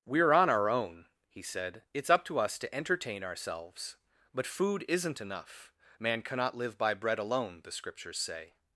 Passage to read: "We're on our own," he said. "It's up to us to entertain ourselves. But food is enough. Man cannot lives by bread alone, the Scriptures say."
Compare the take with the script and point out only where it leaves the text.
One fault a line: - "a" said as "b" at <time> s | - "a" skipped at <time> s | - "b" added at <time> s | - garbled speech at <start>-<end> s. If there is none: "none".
- "is" said as "isn't" at 4.9 s
- "lives" said as "live" at 6.5 s